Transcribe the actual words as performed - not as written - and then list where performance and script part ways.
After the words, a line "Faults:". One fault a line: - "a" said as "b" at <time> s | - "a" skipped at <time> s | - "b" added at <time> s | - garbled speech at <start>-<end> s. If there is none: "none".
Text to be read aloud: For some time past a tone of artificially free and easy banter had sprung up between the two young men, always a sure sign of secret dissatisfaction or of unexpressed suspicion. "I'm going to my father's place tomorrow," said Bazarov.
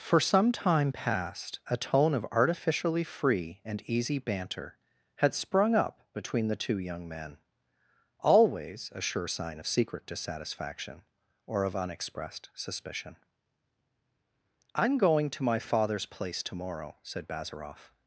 For some time past a tone of artificially free and easy banter had sprung up between the two young men, always a sure sign of secret dissatisfaction or of unexpressed suspicion. "I'm going to my father's place tomorrow," said Bazarov.
Faults:
none